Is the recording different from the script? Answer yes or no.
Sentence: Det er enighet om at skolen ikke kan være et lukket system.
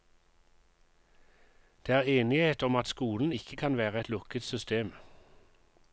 no